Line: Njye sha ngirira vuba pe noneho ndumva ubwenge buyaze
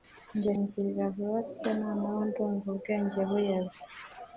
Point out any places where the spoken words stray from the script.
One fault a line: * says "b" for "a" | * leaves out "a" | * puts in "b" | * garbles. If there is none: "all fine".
* leaves out "sha"